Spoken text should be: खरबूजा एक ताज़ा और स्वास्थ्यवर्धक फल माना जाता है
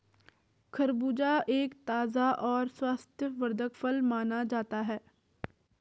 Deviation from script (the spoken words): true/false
false